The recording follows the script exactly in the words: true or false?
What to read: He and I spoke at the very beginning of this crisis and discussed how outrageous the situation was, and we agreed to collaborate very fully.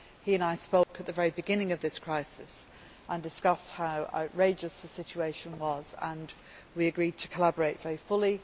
true